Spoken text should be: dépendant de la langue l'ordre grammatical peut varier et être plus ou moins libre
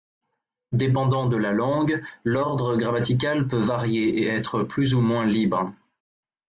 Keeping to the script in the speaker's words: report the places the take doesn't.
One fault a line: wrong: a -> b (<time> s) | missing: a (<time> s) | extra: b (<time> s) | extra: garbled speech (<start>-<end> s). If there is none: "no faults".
no faults